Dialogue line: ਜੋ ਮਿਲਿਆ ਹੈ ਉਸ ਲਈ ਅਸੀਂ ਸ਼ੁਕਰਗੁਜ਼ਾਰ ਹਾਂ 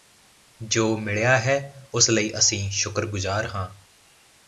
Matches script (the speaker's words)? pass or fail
pass